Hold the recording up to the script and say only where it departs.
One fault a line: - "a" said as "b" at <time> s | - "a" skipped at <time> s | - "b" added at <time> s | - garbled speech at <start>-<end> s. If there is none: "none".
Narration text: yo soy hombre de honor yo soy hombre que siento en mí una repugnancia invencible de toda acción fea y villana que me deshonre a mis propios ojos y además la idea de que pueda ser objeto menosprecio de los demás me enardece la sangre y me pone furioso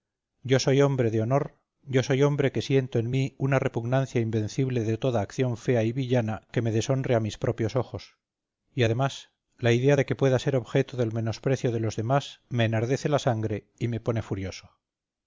- "del" added at 11.0 s